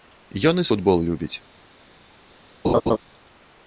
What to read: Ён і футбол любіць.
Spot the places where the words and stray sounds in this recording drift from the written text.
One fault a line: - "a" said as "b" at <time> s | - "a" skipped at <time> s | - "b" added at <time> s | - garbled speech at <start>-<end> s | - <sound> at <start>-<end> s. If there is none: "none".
- laugh at 2.6-3.0 s